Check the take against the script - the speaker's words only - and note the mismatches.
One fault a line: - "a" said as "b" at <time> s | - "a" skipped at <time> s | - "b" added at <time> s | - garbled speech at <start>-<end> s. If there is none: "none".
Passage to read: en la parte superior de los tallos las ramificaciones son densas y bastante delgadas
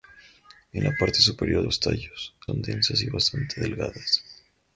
- "de" skipped at 1.6 s
- "las ramificaciones" skipped at 2.3 s